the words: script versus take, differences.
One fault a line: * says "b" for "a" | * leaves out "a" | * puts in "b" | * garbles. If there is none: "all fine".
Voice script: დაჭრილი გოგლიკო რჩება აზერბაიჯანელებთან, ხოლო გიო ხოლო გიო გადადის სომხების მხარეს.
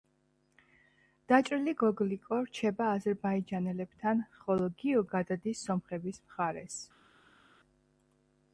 * leaves out "ხოლო გიო"